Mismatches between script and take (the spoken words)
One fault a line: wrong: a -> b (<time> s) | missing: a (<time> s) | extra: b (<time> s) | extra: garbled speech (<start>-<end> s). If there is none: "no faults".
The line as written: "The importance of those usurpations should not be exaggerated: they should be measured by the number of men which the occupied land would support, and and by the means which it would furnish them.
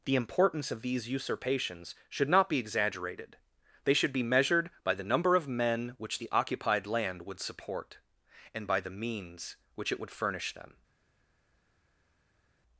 wrong: those -> these (0.8 s)
missing: and (8.7 s)